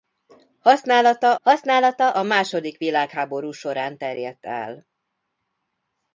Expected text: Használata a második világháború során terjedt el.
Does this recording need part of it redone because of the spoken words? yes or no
yes